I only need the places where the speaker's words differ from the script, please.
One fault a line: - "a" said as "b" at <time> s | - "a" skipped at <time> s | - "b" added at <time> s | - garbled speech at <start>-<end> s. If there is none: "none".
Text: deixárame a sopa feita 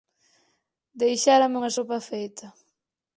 - "a" said as "unha" at 1.6 s